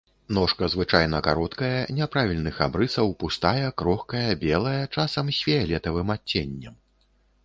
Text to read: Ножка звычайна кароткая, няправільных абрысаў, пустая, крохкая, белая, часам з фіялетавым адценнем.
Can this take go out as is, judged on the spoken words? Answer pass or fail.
pass